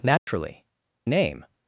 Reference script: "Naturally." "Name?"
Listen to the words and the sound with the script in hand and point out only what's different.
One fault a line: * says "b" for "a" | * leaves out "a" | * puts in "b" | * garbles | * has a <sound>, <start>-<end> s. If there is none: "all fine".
* has a dropout, 0.2-0.3 s